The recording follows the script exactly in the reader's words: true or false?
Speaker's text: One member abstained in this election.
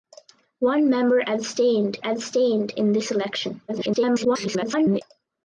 false